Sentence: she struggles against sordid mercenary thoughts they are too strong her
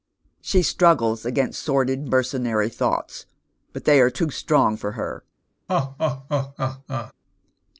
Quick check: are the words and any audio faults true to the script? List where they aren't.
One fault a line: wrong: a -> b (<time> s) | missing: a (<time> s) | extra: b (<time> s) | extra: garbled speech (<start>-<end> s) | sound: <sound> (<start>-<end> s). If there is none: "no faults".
extra: but (3.7 s)
extra: for (4.8 s)
sound: laugh (5.7-7.1 s)